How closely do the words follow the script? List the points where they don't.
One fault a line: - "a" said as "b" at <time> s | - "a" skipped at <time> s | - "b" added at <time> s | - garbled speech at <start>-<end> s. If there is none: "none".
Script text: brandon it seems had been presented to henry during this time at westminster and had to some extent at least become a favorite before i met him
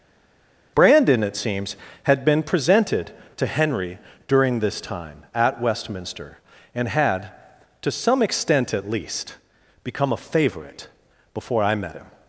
none